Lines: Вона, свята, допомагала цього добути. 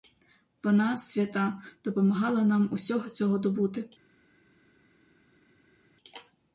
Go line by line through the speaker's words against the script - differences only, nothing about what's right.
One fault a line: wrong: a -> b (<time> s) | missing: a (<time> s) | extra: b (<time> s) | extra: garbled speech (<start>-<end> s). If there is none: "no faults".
extra: нам усього (2.4 s)